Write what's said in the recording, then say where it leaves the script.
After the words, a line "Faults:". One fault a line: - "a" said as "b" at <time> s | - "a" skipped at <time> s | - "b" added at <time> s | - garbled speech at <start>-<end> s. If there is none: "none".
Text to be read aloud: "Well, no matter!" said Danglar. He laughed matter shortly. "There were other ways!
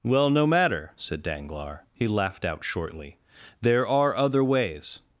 "Well, no matter!" said Danglar. He laughed out shortly. "There are other ways!
Faults:
- "matter" said as "out" at 2.4 s
- "were" said as "are" at 3.9 s